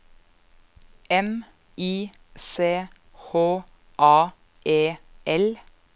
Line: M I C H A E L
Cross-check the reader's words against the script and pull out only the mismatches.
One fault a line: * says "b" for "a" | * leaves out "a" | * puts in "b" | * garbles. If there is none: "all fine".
all fine